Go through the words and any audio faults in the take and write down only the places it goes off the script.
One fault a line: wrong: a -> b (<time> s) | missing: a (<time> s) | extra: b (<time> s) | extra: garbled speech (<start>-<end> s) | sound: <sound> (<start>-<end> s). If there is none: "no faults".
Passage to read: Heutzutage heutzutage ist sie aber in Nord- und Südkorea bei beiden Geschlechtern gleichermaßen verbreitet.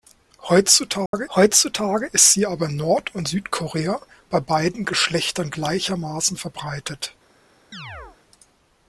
sound: dropout (1.1-1.1 s)
sound: chirp (7.7-8.2 s)